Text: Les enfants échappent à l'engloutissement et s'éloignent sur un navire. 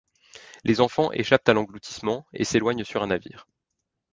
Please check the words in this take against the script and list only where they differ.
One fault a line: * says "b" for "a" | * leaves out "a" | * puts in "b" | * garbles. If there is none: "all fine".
all fine